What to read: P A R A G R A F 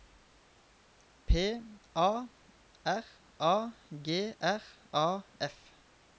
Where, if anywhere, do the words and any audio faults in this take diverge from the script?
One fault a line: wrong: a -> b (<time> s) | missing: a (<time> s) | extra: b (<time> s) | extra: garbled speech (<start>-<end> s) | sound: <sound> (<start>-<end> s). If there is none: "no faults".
no faults